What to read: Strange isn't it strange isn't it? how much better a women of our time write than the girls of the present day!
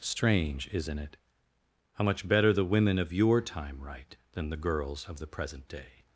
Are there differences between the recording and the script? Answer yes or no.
yes